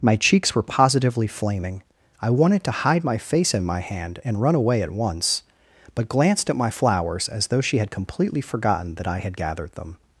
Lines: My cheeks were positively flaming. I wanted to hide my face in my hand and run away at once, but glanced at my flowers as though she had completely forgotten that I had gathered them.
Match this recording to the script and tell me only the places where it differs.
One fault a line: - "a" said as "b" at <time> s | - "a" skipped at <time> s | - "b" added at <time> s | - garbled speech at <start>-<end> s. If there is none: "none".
none